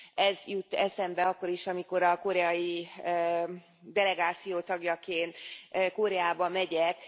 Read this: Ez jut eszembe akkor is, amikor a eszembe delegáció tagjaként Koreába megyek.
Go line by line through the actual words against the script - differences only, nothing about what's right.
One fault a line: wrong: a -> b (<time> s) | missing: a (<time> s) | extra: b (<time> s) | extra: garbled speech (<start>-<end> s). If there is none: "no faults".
wrong: eszembe -> koreai (2.2 s)